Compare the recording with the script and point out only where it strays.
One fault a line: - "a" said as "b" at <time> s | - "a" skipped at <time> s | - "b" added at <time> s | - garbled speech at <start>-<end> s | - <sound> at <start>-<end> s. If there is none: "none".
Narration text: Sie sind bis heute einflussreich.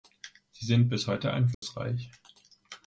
- dropout at 1.5-1.6 s